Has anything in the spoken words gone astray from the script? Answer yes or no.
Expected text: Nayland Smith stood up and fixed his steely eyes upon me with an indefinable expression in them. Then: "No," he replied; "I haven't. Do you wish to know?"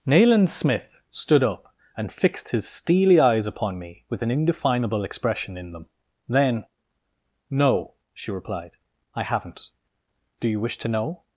yes